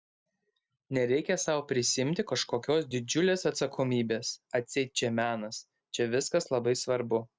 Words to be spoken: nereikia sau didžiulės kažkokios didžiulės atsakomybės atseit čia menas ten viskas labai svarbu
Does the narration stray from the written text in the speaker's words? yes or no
yes